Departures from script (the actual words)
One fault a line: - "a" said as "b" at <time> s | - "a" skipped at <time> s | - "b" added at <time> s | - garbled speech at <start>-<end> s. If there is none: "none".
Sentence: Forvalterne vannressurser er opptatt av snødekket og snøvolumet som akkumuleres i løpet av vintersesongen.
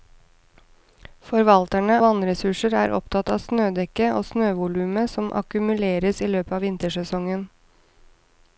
none